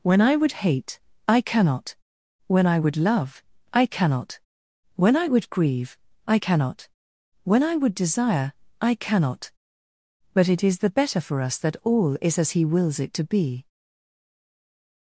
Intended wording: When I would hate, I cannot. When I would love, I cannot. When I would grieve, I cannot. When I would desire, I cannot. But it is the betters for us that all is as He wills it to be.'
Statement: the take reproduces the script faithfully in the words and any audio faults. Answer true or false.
false